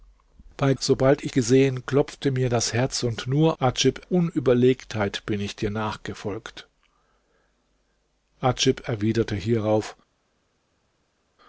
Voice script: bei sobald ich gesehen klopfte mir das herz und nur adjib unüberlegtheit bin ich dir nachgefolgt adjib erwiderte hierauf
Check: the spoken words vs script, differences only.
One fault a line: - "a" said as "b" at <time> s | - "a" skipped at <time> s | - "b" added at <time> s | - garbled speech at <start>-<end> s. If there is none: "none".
none